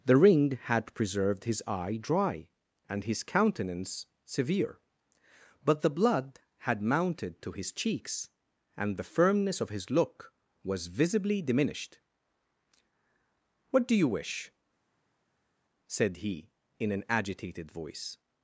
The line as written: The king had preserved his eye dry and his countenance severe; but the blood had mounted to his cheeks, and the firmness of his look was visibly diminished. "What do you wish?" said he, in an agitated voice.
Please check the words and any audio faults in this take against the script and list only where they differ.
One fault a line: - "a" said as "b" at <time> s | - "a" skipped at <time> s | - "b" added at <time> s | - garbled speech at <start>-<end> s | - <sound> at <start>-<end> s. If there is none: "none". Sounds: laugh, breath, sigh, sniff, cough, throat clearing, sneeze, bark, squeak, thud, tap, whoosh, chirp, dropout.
- "king" said as "ring" at 0.2 s